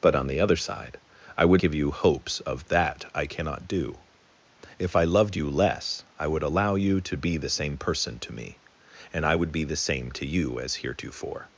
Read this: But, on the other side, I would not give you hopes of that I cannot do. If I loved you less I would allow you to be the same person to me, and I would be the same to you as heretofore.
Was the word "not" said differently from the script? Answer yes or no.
yes